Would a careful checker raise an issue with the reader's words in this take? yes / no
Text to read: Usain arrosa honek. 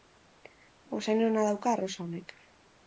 yes